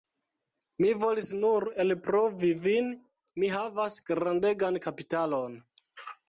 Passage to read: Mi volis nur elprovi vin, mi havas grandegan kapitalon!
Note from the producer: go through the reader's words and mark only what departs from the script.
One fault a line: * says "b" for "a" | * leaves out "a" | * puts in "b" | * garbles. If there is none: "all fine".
all fine